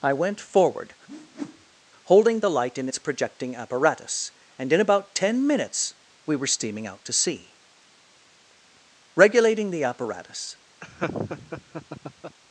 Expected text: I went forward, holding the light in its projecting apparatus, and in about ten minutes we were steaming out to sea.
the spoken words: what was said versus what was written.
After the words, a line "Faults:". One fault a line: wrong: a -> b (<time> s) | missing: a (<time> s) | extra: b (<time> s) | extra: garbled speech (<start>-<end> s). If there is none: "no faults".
I went forward, holding the light in its projecting apparatus, and in about ten minutes we were steaming out to sea. Regulating the apparatus
Faults:
extra: Regulating the apparatus (9.1 s)